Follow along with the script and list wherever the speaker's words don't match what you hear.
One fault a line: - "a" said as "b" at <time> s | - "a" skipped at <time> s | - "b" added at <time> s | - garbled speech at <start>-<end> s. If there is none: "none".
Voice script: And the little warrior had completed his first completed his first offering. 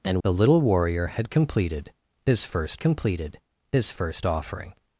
none